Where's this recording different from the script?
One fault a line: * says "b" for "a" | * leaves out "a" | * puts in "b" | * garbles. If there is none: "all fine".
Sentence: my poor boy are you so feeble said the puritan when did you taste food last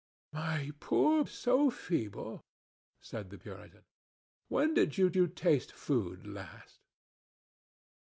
* leaves out "boy are you"
* puts in "you"